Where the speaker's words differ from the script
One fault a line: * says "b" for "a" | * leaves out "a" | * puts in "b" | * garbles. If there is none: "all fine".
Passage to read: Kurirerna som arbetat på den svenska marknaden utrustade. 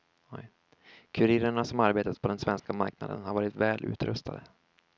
* puts in "har varit väl"